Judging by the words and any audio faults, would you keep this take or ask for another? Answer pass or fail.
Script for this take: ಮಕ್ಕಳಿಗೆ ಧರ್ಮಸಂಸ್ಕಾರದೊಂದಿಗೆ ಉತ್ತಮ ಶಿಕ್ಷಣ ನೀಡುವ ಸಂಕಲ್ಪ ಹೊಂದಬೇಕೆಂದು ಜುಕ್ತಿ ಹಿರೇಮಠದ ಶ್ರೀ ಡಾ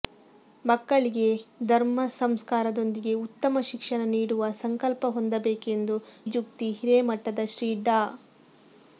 pass